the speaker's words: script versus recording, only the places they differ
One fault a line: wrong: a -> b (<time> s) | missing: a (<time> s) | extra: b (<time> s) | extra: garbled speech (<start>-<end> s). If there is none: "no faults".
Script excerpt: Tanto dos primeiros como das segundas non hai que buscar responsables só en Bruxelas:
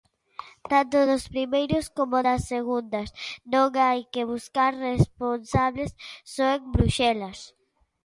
no faults